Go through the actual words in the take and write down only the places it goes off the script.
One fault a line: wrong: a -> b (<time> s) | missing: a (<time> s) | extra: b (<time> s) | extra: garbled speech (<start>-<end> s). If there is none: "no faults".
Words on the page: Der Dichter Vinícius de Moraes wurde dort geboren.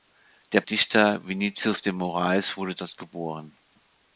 no faults